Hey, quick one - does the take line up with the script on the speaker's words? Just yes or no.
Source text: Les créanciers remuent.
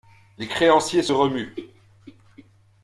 no